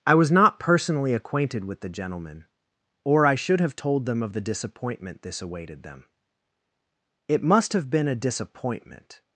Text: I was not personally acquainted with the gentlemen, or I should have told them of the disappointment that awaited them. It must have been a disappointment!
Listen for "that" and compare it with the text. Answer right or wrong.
wrong